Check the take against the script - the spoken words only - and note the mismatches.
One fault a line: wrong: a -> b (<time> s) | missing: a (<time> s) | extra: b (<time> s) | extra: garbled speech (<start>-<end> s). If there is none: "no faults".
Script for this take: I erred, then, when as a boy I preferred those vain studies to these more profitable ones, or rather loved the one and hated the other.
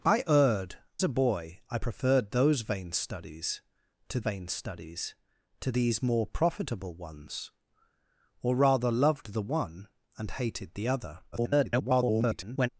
missing: then when as (0.8 s)
extra: vain studies to (4.2 s)
extra: garbled speech (11.3-12.7 s)